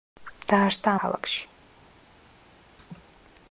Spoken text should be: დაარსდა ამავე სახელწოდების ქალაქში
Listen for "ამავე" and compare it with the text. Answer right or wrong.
wrong